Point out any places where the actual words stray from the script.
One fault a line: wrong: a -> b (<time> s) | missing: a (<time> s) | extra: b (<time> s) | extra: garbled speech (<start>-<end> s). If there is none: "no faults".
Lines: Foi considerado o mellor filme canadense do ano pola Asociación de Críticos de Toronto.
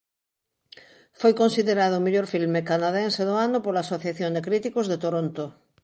no faults